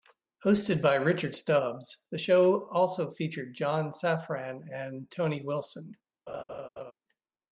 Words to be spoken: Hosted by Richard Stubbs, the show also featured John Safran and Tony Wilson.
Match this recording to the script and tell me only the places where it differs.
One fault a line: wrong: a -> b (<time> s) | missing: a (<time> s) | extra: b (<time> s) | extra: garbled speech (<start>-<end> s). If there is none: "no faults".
no faults